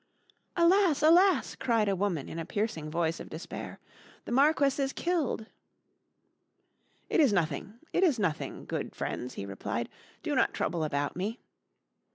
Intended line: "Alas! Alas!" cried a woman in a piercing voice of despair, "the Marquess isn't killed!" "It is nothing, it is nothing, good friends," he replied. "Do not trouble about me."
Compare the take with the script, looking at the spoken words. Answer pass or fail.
fail